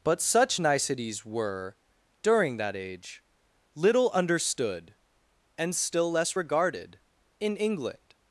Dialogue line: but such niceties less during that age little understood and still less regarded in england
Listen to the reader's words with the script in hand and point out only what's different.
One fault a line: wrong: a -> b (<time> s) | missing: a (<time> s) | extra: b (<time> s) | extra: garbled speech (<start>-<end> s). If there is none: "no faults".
wrong: less -> were (1.3 s)